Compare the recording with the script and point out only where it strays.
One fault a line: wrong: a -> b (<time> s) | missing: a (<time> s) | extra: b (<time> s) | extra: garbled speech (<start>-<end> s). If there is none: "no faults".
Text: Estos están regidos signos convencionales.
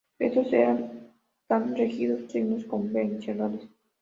no faults